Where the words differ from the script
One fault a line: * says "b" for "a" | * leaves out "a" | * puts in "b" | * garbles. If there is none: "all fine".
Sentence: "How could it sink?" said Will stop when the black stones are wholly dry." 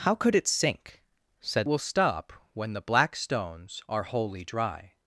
all fine